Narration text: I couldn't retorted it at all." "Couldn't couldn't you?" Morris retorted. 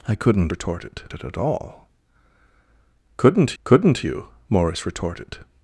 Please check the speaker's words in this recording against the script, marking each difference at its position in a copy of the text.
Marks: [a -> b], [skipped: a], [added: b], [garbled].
I couldn't retorted it at all." "Couldn't couldn't you?" Morris retorted.